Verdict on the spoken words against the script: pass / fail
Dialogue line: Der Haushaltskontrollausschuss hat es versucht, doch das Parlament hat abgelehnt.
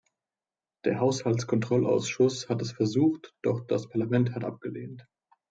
pass